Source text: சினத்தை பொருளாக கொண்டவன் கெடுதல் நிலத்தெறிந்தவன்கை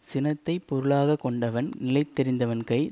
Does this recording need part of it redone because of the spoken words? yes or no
yes